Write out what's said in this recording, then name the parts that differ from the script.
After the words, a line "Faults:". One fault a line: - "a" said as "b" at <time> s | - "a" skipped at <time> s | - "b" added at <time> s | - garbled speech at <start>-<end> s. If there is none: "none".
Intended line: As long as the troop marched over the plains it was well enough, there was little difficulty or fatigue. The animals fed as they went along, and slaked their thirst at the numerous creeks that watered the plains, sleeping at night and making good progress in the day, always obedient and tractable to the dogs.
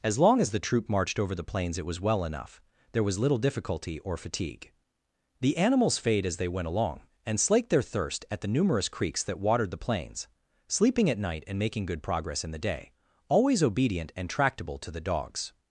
As long as the troop marched over the plains it was well enough, there was little difficulty or fatigue. The animals fade as they went along, and slaked their thirst at the numerous creeks that watered the plains, sleeping at night and making good progress in the day, always obedient and tractable to the dogs.
Faults:
- "fed" said as "fade" at 6.0 s